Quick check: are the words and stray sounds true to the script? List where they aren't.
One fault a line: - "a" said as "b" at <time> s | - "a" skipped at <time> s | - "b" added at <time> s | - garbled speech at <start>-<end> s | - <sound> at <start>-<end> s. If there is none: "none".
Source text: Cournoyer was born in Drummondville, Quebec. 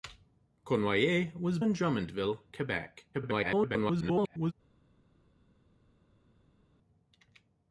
- "born" skipped at 1.6 s
- garbled speech at 3.1-4.5 s